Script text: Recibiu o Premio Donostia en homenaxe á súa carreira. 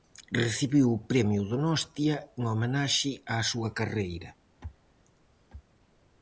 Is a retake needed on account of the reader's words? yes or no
no